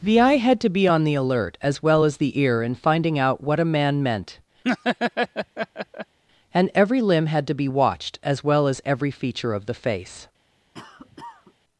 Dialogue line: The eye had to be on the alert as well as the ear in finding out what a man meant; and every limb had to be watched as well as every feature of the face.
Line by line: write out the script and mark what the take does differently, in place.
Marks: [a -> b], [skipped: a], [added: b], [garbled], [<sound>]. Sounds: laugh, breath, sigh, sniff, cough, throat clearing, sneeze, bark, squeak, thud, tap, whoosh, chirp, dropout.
The eye had to be on the alert as well as the ear in finding out what a man meant; [laugh] and every limb had to be watched as well as every feature of the face. [cough]